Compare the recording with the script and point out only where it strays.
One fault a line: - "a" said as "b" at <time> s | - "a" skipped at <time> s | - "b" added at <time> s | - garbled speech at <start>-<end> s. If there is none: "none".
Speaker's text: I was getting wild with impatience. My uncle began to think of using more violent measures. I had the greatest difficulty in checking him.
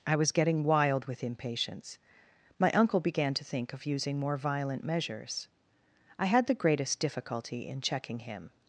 none